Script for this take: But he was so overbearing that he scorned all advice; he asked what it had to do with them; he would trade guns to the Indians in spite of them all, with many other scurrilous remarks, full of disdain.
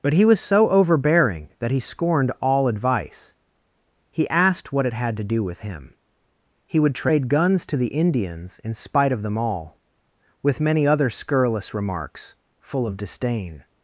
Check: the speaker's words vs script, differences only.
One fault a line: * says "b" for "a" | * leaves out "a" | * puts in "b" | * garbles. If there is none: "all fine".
* says "him" for "them"